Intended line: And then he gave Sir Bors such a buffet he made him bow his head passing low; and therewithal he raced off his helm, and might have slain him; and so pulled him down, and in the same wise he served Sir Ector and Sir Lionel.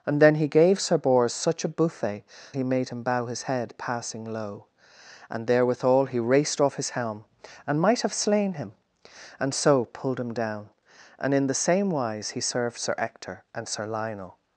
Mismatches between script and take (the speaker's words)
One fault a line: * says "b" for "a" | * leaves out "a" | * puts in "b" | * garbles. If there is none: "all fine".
all fine